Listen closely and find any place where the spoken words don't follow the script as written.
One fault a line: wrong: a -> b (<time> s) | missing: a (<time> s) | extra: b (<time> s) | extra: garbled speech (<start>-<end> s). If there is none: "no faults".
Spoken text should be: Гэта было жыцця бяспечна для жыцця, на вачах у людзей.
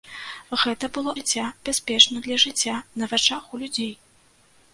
no faults